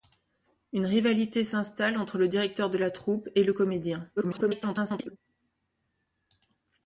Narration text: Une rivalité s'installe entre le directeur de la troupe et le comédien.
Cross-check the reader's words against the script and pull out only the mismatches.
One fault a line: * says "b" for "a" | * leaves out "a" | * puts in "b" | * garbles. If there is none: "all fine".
* garbles